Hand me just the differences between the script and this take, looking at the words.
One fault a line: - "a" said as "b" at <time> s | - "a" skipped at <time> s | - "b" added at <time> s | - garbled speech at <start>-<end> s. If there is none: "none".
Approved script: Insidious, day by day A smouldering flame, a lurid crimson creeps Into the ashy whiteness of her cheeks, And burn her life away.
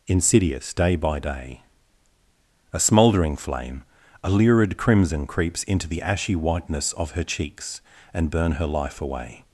none